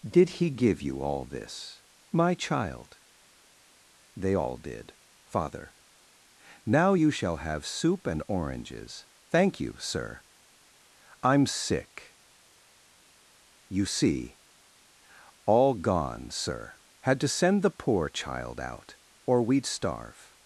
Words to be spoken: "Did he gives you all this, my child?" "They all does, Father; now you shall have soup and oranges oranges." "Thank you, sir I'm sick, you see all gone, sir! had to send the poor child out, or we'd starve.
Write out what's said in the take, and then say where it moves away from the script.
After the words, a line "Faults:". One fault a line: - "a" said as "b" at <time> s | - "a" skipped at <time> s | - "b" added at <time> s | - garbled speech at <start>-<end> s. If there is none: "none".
"Did he give you all this, my child?" "They all did, Father; now you shall have soup and oranges." "Thank you, sir I'm sick, you see all gone, sir! had to send the poor child out, or we'd starve.
Faults:
- "gives" said as "give" at 0.5 s
- "does" said as "did" at 4.6 s
- "oranges" skipped at 9.1 s